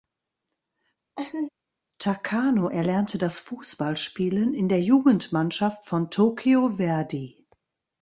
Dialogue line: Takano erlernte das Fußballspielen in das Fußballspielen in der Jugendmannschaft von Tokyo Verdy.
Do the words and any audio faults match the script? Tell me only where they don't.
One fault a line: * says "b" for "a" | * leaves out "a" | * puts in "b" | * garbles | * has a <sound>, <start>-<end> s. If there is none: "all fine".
* has a laugh, 1.2-1.5 s
* leaves out "das Fußballspielen in"